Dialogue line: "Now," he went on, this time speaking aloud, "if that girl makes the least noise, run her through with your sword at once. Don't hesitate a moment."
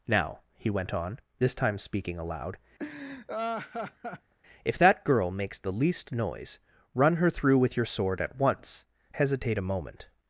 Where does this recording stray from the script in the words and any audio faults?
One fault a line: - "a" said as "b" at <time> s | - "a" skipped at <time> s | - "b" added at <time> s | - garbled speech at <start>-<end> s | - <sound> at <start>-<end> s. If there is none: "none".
- laugh at 2.8-4.3 s
- "Don't" skipped at 8.9 s